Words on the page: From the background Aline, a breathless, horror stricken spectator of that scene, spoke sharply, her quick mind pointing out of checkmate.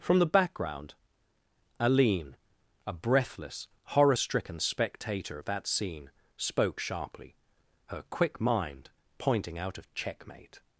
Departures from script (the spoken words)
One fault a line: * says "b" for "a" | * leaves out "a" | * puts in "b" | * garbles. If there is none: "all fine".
all fine